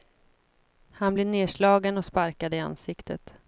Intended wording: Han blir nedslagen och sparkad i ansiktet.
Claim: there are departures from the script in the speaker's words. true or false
false